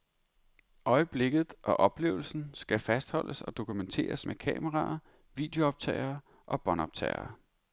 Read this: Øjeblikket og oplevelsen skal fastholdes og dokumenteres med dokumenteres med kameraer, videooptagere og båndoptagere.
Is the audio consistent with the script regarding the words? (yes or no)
no